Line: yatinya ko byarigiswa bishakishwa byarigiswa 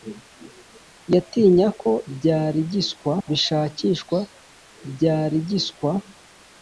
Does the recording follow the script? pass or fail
pass